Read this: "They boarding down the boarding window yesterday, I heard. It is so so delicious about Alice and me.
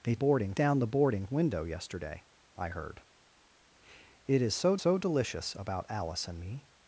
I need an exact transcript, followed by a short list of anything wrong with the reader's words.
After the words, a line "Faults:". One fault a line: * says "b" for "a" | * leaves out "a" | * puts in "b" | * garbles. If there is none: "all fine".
"They boarding down the boarding window yesterday, I heard. It is so so delicious about Alice and me.
Faults:
all fine